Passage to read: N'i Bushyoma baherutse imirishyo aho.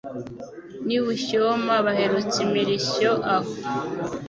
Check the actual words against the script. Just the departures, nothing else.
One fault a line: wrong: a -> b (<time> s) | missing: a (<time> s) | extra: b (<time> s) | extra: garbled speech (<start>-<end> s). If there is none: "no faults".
no faults